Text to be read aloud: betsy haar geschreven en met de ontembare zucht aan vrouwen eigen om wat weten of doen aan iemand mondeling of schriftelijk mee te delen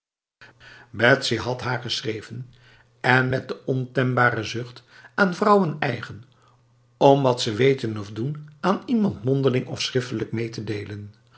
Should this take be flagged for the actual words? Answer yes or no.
yes